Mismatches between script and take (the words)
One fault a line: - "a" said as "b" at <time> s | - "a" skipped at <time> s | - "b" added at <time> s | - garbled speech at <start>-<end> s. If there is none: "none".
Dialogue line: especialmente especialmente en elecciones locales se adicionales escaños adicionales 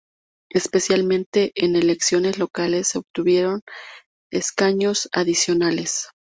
- "especialmente" skipped at 1.5 s
- "adicionales" said as "obtuvieron" at 3.0 s